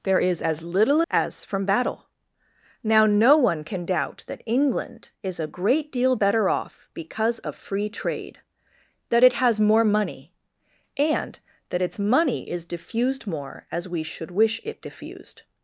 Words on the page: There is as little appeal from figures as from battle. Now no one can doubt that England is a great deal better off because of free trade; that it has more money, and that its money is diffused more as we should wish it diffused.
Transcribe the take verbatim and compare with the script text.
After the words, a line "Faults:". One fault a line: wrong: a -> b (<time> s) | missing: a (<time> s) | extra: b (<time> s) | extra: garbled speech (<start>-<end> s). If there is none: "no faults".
There is as little as from battle. Now no one can doubt that England is a great deal better off because of free trade; that it has more money, and that its money is diffused more as we should wish it diffused.
Faults:
missing: appeal from figures (1.0 s)